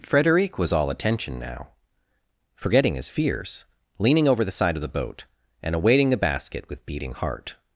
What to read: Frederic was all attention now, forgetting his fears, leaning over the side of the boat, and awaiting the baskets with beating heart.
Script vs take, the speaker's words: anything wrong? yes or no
yes